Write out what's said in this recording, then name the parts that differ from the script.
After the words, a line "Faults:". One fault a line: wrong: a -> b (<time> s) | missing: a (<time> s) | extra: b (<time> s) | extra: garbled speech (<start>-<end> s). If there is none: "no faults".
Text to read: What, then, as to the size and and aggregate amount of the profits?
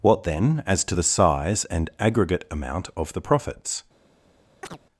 What, then, as to the size and aggregate amount of the profits?
Faults:
missing: and (1.9 s)